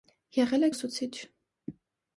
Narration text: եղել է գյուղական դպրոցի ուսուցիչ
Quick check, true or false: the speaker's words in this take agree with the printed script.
false